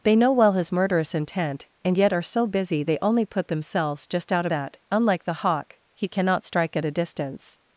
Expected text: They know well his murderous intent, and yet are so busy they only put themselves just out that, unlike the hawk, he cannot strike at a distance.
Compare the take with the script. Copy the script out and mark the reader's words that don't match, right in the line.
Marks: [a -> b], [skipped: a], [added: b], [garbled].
They know well his murderous intent, and yet are so busy they only put themselves just out that, unlike the hawk, he cannot strike at a distance.